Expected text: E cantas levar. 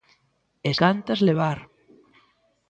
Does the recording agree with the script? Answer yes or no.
yes